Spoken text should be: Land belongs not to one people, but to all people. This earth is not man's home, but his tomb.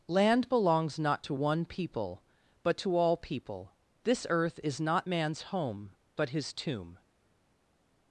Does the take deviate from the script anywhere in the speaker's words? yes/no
no